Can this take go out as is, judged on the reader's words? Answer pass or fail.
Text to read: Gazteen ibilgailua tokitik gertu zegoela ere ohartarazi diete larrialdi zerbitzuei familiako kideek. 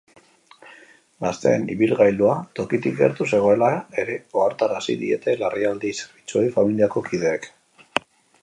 pass